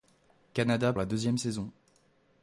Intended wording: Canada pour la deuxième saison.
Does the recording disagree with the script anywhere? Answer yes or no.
yes